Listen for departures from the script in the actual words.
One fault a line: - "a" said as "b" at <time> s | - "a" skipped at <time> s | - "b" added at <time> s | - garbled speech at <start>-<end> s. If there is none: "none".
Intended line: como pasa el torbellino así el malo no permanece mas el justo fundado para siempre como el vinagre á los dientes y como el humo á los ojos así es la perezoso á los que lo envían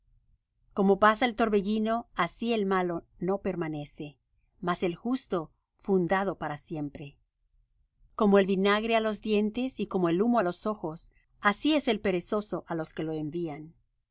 - "la" said as "el" at 11.9 s